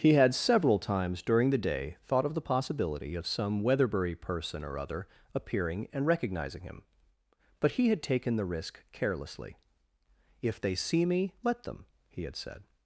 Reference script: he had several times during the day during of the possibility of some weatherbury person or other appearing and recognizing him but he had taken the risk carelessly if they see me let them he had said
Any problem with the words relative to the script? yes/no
yes